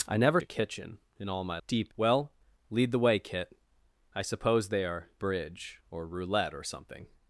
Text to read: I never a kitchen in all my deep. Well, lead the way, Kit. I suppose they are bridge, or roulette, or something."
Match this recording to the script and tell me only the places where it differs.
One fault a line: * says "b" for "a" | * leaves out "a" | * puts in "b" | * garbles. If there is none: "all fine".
all fine